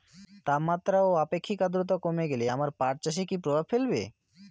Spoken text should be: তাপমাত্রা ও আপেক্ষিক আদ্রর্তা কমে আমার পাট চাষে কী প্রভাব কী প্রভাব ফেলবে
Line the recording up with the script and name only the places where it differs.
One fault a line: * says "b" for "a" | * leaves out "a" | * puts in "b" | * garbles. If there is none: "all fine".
* puts in "গেলে"
* leaves out "কী প্রভাব"